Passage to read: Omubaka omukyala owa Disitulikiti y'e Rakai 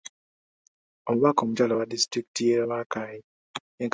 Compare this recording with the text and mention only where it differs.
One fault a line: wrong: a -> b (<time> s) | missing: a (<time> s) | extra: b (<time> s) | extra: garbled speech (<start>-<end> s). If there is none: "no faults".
no faults